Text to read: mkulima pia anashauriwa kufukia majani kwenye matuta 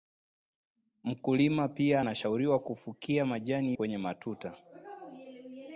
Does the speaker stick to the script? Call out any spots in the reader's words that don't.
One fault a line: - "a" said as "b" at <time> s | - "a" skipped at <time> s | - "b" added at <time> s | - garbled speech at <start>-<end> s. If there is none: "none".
none